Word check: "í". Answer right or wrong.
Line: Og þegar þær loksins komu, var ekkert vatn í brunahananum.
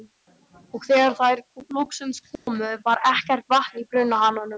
right